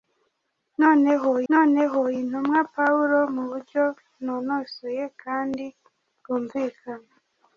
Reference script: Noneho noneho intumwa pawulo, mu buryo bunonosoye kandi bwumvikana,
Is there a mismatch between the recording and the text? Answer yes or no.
no